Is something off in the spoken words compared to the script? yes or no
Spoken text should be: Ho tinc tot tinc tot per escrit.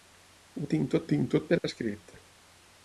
no